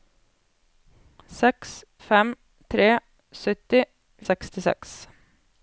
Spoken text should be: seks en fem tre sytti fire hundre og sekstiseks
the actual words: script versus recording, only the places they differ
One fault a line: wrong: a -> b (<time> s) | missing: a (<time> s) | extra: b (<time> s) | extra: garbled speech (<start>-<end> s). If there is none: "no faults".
missing: en (1.7 s)
missing: fire hundre (3.8 s)